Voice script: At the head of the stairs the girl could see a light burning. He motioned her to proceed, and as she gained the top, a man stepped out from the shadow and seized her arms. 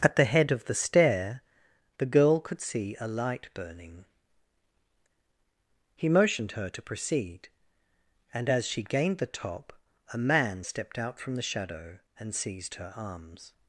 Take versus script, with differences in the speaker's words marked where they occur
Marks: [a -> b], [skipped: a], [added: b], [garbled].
At the head of the [stairs -> stair] the girl could see a light burning. He motioned her to proceed, and as she gained the top, a man stepped out from the shadow and seized her arms.